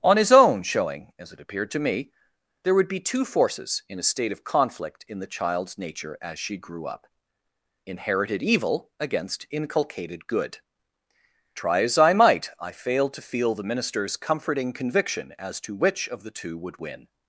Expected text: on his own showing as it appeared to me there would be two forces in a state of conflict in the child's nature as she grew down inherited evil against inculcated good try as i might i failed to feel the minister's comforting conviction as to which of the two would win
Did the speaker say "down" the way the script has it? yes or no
no